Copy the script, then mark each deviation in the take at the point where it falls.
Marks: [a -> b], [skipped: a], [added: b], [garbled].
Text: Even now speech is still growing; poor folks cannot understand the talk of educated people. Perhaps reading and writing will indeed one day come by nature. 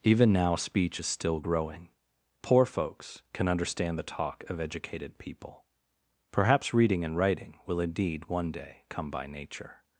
Even now speech is still growing; poor folks [cannot -> can] understand the talk of educated people. Perhaps reading and writing will indeed one day come by nature.